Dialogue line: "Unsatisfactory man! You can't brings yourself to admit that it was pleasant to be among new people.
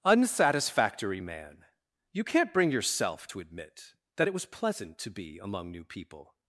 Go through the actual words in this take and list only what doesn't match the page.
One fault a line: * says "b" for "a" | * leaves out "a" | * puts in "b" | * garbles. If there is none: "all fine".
* says "bring" for "brings"